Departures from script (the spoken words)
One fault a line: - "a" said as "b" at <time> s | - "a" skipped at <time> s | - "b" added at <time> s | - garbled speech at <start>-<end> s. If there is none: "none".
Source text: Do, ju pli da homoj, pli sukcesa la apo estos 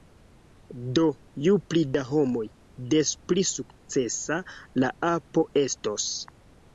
- "des" added at 2.9 s